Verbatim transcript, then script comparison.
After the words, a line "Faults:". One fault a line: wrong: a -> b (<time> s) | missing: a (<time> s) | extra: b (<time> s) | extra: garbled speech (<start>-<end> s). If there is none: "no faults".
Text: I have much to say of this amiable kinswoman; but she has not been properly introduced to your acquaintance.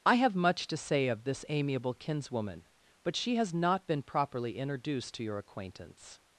I have much to say of this amiable kinswoman; but she has not been properly introduced to your acquaintance.
Faults:
no faults